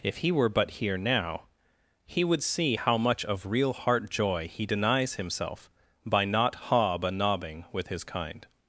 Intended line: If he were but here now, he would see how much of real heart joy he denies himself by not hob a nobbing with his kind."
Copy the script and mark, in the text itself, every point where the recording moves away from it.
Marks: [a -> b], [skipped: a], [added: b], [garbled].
If he were but here now, he would see how much of real heart joy he denies himself by not hob a nobbing with his kind."